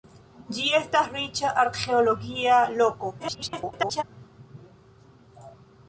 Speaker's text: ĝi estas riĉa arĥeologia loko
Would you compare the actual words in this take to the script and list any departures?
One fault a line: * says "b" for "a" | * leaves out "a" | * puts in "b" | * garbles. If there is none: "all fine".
* garbles